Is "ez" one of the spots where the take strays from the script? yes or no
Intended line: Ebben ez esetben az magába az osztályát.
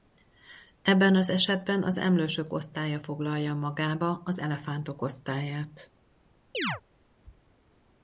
yes